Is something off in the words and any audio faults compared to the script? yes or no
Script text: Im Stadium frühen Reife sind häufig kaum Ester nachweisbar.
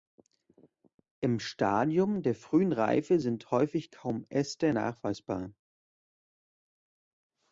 yes